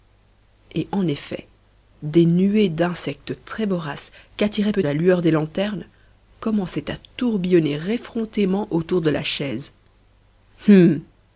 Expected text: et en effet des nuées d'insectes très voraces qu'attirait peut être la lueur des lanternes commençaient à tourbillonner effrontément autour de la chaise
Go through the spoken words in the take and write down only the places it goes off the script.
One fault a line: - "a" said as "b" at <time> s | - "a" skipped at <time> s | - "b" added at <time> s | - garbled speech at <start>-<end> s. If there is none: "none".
- "être" skipped at 4.9 s